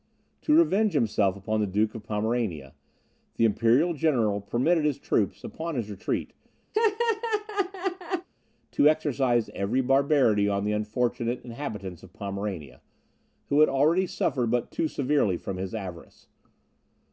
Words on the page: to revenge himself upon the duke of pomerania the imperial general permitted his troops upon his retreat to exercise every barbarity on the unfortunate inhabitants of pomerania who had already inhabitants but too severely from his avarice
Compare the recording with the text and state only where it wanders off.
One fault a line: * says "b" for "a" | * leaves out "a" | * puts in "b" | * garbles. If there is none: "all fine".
* says "suffered" for "inhabitants"